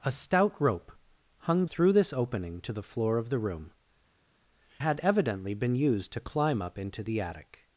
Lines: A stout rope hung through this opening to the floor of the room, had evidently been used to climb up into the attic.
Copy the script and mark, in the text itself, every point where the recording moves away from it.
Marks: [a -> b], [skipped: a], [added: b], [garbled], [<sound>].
A stout rope hung through this opening to the floor of the room, had evidently been used to climb up into the attic.